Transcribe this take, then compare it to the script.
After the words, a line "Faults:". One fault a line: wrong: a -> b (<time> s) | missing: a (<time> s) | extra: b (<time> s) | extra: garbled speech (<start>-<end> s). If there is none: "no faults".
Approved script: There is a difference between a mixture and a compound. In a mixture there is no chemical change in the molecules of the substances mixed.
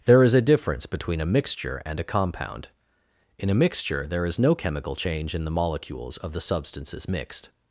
There is a difference between a mixture and a compound. In a mixture there is no chemical change in the molecules of the substances mixed.
Faults:
no faults